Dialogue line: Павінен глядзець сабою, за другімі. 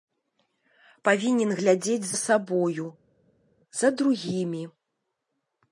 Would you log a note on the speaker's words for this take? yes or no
no